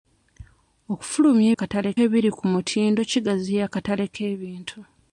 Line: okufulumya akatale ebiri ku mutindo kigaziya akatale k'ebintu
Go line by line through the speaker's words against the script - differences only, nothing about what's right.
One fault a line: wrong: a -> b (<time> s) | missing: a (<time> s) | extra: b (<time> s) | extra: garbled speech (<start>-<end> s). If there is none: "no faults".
no faults